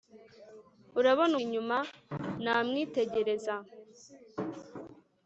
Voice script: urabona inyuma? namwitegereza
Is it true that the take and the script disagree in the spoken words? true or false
false